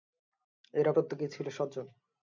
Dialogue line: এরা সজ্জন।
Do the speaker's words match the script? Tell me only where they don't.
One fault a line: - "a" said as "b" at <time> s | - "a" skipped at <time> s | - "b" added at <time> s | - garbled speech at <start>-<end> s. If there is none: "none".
- "প্রত্যেকেই ছিল" added at 0.9 s